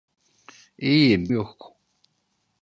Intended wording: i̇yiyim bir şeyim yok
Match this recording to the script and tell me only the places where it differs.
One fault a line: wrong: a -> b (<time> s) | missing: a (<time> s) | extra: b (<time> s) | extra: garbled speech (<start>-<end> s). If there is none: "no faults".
missing: bir şeyim (1.3 s)